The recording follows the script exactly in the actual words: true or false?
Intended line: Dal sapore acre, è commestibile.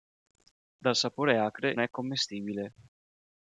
true